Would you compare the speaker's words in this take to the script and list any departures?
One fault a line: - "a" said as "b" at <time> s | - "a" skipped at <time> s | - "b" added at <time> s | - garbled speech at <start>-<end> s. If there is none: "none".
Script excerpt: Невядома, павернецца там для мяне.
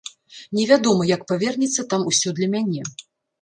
- "як" added at 1.1 s
- "усё" added at 2.1 s